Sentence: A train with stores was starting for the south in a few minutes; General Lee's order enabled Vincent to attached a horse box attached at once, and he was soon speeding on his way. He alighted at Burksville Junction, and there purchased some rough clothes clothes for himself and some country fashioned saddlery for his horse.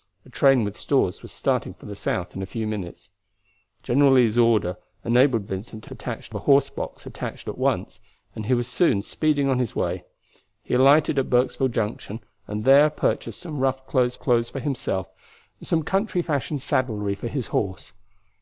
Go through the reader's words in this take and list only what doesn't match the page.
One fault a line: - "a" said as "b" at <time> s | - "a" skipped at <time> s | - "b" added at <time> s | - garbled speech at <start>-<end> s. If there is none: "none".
none